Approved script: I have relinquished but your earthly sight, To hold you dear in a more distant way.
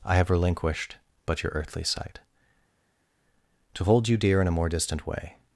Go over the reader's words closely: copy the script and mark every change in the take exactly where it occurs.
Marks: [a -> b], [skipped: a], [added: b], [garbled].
I have relinquished but your earthly sight, To hold you dear in a more distant way.